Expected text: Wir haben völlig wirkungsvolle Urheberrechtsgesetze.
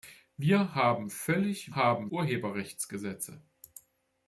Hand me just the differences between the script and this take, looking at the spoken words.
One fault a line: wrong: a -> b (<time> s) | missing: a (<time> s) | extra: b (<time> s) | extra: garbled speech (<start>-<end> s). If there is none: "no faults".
wrong: wirkungsvolle -> haben (1.7 s)